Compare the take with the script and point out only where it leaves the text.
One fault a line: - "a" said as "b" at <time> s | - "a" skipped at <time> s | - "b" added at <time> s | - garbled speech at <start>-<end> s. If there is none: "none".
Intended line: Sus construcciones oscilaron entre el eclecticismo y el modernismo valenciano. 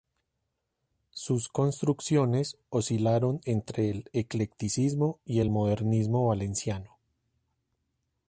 none